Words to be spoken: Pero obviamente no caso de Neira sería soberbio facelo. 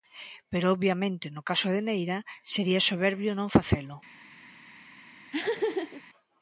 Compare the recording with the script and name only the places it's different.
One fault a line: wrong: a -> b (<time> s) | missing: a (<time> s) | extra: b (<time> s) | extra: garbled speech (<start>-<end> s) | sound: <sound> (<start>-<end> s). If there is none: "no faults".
extra: non (3.4 s)
sound: laugh (5.3-6.0 s)